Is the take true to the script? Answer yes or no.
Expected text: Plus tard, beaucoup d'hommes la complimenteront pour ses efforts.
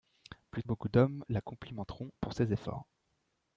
no